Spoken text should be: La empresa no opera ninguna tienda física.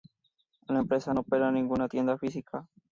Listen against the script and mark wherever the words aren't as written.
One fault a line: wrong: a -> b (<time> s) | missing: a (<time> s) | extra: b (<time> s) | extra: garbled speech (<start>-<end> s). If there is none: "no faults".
no faults